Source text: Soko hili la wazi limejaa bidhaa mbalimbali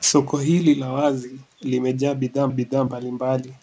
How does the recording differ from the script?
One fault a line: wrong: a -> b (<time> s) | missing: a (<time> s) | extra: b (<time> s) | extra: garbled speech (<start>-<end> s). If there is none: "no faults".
extra: bidhaa (2.5 s)